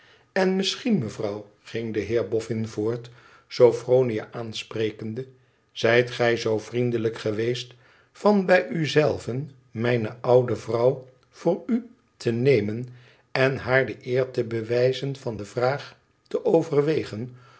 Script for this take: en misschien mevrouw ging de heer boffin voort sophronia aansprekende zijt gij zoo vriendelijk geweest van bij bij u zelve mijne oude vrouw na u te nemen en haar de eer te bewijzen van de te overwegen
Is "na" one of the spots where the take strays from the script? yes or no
yes